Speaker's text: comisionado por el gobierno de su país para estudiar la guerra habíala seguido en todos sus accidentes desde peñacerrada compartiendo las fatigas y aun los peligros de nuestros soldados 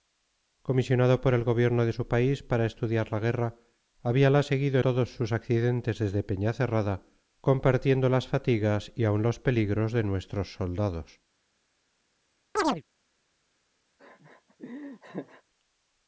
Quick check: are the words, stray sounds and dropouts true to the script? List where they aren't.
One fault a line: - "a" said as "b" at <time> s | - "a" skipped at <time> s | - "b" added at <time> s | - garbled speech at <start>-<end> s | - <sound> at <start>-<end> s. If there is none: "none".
- "en" skipped at 4.8 s
- chirp at 12.6-12.8 s
- laugh at 14.0-15.4 s